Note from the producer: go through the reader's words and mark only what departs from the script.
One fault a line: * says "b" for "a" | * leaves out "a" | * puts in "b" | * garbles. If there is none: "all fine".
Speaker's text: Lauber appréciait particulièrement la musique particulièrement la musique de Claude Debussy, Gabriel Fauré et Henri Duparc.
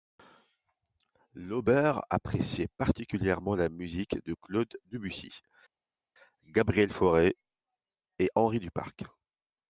* leaves out "particulièrement la musique"